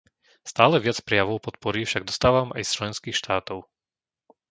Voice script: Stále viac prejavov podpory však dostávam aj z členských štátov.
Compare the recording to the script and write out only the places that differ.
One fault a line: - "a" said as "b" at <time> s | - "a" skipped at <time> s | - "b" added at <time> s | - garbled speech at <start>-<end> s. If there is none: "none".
none